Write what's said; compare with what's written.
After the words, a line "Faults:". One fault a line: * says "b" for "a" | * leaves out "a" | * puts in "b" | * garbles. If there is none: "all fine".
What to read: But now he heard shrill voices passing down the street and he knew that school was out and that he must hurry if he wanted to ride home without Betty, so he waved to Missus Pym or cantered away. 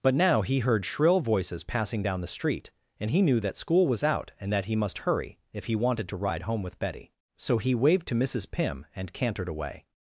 But now he heard shrill voices passing down the street and he knew that school was out and that he must hurry if he wanted to ride home with Betty, so he waved to Missus Pym and cantered away.
Faults:
* says "with" for "without"
* says "and" for "or"